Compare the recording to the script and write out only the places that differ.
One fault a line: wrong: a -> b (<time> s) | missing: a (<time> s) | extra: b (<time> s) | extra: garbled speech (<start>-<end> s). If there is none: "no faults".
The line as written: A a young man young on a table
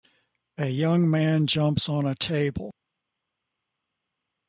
missing: a (0.7 s)
wrong: young -> jumps (1.4 s)